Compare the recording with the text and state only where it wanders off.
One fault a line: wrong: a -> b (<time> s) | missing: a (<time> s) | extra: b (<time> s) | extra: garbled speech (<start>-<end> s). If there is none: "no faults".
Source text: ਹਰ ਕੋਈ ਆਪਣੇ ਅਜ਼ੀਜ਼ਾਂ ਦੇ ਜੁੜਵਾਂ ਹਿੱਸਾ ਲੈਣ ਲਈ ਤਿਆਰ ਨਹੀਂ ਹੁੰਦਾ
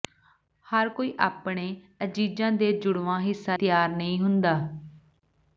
missing: ਲੈਣ ਲਈ (3.6 s)